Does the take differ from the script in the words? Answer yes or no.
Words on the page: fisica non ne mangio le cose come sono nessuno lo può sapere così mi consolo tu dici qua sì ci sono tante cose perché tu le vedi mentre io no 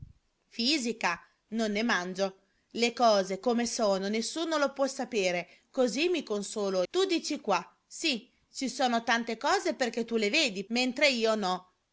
no